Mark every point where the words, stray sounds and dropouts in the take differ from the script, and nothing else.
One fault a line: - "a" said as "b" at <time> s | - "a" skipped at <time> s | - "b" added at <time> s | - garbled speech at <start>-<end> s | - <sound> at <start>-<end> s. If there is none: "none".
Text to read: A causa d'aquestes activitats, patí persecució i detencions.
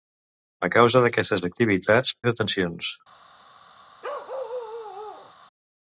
- "patí persecució" skipped at 2.2 s
- bark at 4.0-5.3 s